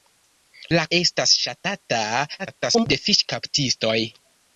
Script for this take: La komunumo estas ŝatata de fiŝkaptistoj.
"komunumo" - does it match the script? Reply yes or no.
no